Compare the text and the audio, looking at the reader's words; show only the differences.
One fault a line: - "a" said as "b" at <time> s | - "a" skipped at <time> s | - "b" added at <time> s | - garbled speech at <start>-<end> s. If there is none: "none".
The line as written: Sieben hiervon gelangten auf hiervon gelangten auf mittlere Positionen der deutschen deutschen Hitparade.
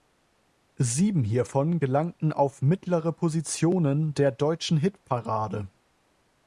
- "hiervon gelangten auf" skipped at 2.6 s
- "deutschen" skipped at 4.8 s